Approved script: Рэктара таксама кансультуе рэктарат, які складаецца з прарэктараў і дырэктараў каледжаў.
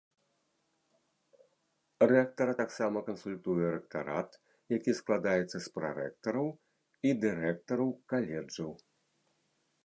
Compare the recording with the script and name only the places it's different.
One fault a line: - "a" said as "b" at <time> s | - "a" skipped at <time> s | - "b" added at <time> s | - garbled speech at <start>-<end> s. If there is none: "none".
none